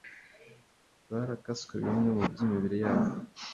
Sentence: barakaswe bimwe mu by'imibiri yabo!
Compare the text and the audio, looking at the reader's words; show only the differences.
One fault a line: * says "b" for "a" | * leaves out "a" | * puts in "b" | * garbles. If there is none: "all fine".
all fine